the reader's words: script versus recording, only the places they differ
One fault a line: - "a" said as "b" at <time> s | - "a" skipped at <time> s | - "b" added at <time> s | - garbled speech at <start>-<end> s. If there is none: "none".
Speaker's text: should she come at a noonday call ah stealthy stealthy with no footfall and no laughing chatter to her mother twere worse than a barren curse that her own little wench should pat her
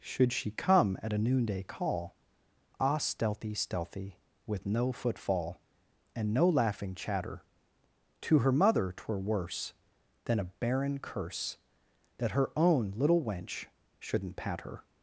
- "should" said as "shouldn't" at 14.0 s